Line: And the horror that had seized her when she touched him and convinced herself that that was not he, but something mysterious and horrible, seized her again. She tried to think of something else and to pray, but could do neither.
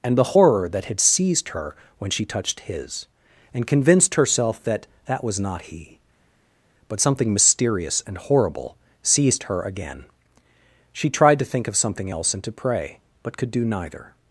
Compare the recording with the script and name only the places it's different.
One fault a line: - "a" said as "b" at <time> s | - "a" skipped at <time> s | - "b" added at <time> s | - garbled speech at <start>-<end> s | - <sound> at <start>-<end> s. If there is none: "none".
- "him" said as "his" at 2.6 s